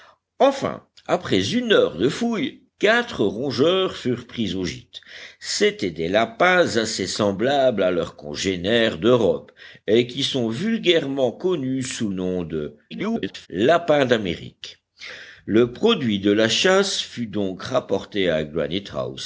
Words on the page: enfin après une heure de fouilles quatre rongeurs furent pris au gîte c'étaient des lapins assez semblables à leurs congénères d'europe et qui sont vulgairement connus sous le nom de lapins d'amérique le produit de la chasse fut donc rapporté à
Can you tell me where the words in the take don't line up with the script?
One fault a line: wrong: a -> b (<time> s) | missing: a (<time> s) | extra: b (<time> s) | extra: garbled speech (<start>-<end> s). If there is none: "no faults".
missing: le (12.1 s)
extra: garbled speech (12.9-13.5 s)